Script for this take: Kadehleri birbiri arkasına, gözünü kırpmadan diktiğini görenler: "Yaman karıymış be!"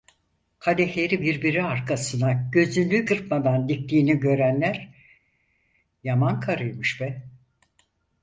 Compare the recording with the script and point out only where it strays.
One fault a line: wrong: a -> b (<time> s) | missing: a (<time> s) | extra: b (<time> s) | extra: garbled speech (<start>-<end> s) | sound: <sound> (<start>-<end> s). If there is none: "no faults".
no faults